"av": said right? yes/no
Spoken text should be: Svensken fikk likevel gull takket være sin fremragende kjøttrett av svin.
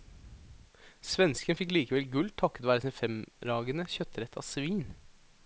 yes